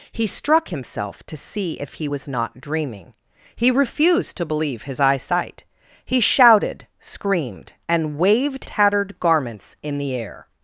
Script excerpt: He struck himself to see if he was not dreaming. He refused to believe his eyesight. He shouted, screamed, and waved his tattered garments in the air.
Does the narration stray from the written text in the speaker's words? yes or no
yes